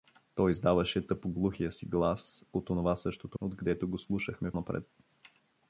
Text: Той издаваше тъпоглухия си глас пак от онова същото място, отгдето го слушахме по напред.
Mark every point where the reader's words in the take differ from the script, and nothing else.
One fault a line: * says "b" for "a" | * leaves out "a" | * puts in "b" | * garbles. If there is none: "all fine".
* leaves out "пак"
* leaves out "място"
* leaves out "по"